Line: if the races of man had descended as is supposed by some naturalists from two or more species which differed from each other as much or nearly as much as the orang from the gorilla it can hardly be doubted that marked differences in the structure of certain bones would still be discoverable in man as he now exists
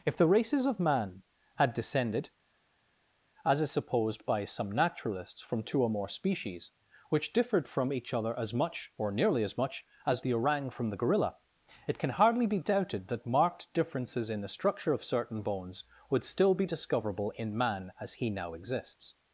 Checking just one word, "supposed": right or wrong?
right